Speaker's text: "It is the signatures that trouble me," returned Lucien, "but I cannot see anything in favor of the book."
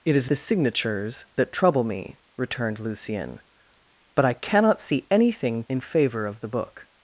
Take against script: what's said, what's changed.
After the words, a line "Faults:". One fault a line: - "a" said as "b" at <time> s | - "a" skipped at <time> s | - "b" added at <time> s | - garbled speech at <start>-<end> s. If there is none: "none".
"It is the signatures that trouble me," returned Lucien, "but I cannot see anything in favor of the book."
Faults:
none